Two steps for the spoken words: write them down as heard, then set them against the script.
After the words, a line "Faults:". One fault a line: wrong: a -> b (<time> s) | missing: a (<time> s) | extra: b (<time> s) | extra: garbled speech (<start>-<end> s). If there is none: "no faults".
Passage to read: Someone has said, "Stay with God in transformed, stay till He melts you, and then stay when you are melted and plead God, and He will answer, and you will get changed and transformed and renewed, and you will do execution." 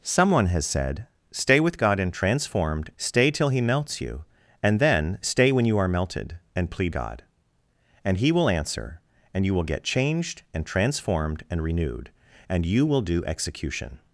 Someone has said, "Stay with God in transformed, stay till He melts you, and then stay when you are melted and plead God, and He will answer, and you will get changed and transformed and renewed, and you will do execution."
Faults:
no faults